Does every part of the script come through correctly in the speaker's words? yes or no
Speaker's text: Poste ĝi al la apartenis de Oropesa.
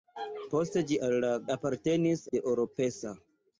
yes